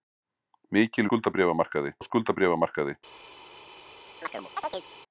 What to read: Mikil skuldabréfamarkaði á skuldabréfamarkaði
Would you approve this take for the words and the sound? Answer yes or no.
no